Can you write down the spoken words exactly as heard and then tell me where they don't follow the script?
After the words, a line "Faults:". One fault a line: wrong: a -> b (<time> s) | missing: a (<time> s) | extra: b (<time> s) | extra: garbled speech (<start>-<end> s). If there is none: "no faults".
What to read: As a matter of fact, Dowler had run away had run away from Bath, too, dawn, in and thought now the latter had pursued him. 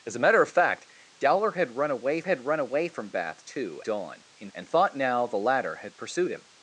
As a matter of fact, Dowler had run away had run away from Bath, too, dawn, in and thought now the latter had pursued him.
Faults:
no faults